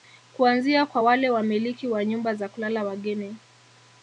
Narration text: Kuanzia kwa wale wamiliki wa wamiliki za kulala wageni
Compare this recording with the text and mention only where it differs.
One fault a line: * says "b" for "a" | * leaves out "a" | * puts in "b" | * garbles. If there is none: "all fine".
* says "nyumba" for "wamiliki"